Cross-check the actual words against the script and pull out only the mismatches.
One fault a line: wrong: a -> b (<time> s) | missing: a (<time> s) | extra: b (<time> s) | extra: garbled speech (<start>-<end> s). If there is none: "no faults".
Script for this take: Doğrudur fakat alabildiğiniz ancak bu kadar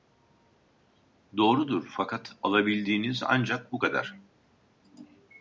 no faults